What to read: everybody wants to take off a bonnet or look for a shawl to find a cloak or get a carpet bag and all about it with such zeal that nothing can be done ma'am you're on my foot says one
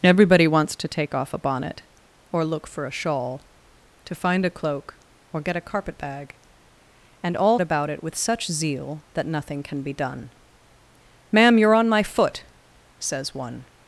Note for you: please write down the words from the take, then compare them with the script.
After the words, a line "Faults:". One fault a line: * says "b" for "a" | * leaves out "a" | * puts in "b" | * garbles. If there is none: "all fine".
everybody wants to take off a bonnet or look for a shawl to find a cloak or get a carpet bag and all about it with such zeal that nothing can be done ma'am you're on my foot says one
Faults:
all fine